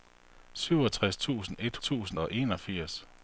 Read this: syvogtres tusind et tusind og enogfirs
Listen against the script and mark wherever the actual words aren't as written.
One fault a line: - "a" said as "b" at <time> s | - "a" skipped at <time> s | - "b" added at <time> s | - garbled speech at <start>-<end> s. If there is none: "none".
none